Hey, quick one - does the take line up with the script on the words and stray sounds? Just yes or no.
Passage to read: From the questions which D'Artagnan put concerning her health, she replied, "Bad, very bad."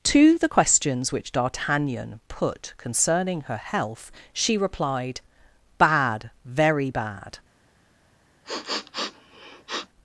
no